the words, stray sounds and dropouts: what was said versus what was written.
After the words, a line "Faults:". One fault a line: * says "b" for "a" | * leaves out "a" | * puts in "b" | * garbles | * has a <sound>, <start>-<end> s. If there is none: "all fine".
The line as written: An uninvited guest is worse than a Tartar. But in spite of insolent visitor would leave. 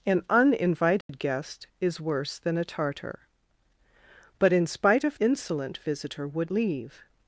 An uninvited guest is worse than a Tartar. But in spite of insolent visitor would leave.
Faults:
* has a dropout, 1.0-1.1 s